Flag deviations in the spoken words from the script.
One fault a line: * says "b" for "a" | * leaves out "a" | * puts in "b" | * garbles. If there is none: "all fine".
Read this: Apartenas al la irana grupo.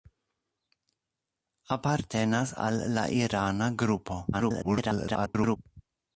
* garbles